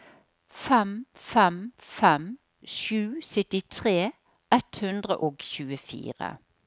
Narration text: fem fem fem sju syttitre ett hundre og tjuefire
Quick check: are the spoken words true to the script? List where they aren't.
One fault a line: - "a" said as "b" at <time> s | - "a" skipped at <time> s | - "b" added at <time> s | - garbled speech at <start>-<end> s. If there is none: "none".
none